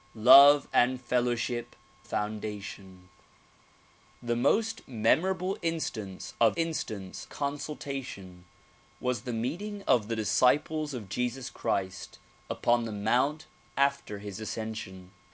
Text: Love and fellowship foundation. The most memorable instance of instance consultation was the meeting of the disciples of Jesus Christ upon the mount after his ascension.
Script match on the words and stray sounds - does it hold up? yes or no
yes